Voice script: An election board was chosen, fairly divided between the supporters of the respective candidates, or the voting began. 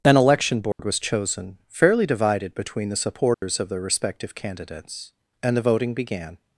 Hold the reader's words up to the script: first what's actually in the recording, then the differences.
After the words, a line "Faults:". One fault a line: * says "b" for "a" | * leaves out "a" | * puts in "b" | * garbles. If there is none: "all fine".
An election board was chosen, fairly divided between the supporters of the respective candidates, and the voting began.
Faults:
* says "and" for "or"